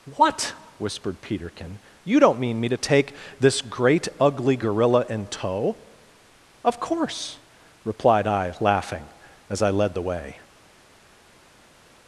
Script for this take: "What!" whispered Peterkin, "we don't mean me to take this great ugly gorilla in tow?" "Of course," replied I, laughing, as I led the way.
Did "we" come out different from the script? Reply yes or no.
yes